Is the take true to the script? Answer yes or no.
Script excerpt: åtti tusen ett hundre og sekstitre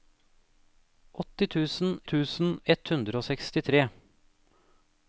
no